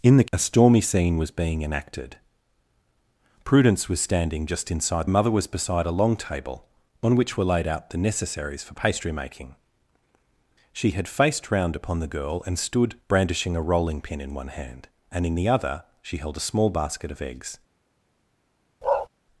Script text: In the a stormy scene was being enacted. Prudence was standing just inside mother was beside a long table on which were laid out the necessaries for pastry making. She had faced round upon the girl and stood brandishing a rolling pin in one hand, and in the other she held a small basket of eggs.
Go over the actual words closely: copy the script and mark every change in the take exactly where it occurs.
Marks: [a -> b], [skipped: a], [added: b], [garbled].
In the a stormy scene was being enacted. Prudence was standing just inside mother was beside a long table on which were laid out the necessaries for pastry making. She had faced round upon the girl and stood brandishing a rolling pin in one hand, and in the other she held a small basket of eggs.